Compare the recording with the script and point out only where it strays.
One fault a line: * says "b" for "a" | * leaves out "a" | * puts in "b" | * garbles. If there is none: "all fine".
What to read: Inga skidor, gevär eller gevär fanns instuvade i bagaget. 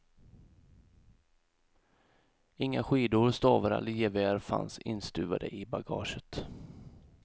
* says "stavar" for "gevär"